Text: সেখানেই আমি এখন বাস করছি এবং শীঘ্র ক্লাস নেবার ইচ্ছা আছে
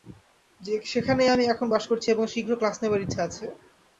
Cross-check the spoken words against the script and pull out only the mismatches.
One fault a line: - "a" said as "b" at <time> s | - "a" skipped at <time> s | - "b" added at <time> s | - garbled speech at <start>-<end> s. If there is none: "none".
none